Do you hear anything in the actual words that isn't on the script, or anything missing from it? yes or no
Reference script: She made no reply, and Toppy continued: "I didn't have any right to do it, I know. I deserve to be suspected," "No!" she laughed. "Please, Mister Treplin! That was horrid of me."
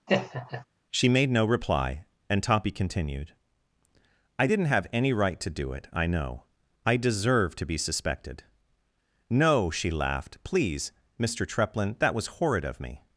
no